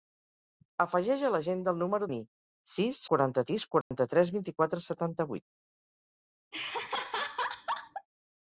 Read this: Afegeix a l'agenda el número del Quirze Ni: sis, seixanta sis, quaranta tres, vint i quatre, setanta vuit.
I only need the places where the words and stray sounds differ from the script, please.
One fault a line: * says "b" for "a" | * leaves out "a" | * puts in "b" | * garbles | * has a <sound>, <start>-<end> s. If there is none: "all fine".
* leaves out "del Quirze"
* says "quaranta" for "seixanta"
* has a dropout, 3.8-3.9 s
* has a laugh, 6.5-8.1 s